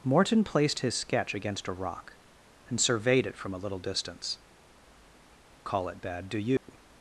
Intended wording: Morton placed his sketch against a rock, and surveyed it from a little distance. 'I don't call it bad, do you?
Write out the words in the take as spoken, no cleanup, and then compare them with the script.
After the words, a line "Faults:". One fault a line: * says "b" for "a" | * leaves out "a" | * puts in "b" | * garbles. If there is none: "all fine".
Morton placed his sketch against a rock, and surveyed it from a little distance. 'call it bad, do you?
Faults:
* leaves out "I don't"